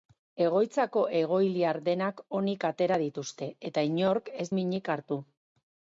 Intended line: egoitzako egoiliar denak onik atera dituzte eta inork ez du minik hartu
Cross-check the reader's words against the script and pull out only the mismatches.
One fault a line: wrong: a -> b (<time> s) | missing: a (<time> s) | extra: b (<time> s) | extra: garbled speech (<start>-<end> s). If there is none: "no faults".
missing: du (4.5 s)